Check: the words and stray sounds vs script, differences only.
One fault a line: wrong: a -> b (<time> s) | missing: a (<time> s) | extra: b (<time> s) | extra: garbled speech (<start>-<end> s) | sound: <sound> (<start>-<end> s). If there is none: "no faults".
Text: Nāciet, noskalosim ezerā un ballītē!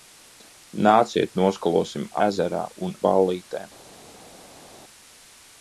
no faults